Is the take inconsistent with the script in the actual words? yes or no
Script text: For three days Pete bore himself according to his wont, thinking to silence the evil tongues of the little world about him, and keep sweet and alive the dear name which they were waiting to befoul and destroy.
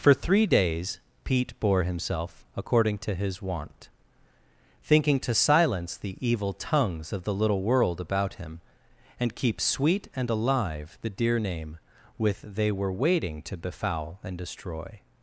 yes